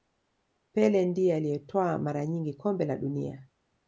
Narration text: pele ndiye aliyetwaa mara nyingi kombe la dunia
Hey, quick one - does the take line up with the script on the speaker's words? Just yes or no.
yes